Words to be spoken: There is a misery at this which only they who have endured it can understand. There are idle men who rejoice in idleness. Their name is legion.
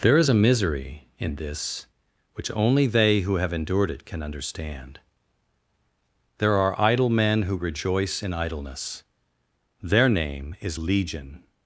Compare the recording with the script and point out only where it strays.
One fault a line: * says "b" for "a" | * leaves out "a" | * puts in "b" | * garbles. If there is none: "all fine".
* says "in" for "at"